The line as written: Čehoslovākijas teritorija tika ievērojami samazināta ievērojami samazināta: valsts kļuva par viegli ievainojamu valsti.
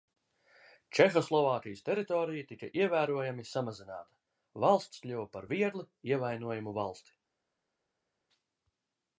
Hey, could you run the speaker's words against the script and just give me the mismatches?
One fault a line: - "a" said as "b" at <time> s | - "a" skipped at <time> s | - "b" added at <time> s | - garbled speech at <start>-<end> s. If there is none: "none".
- "ievērojami samazināta" skipped at 4.2 s